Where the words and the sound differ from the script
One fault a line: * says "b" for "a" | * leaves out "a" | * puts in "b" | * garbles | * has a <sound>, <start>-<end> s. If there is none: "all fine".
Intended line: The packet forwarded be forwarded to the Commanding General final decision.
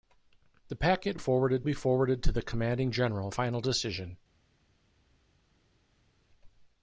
all fine